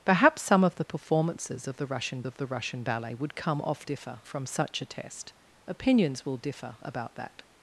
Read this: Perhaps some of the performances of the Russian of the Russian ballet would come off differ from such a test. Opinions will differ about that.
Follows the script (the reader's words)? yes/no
yes